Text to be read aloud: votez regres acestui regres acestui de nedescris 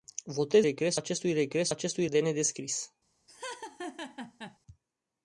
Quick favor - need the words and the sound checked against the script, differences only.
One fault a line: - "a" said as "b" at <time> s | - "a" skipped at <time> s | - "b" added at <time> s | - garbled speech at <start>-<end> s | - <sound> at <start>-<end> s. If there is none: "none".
- laugh at 3.3-4.6 s